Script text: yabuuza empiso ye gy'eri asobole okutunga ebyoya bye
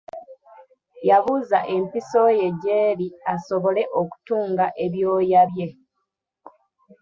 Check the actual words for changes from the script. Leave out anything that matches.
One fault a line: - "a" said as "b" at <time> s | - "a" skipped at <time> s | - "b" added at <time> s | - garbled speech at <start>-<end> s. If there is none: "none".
none